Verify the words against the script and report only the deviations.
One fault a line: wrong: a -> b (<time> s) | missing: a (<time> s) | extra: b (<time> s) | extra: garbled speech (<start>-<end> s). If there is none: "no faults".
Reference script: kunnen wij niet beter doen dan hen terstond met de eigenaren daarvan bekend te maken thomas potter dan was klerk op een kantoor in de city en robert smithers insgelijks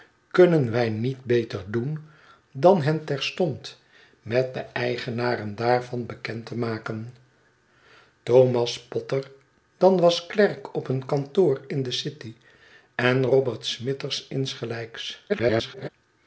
extra: garbled speech (15.3-15.9 s)